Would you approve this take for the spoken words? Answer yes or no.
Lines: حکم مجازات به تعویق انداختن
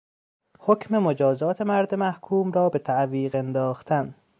no